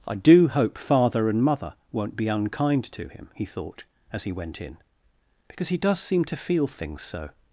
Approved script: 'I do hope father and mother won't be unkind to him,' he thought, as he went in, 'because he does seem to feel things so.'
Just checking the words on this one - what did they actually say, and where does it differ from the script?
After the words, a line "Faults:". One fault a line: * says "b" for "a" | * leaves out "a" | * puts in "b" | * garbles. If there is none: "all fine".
'I do hope father and mother won't be unkind to him,' he thought, as he went in, 'because he does seem to feel things so.'
Faults:
all fine